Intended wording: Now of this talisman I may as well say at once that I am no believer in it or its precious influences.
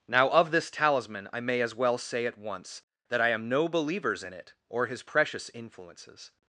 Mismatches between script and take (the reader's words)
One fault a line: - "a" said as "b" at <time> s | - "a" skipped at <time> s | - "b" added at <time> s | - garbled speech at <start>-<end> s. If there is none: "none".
- "believer" said as "believers" at 3.7 s
- "its" said as "his" at 4.9 s